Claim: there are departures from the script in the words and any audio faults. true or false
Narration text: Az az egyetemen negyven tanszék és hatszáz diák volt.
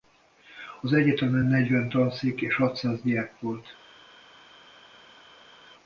true